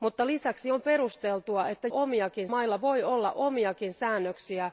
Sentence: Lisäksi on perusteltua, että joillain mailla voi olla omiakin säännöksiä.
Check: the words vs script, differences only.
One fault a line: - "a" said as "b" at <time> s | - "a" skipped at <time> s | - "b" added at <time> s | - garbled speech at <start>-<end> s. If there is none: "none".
- "joillain" said as "omiakin" at 1.9 s